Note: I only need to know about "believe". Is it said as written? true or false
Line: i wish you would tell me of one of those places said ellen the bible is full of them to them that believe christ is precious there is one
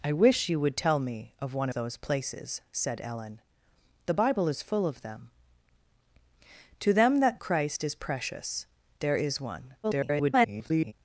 false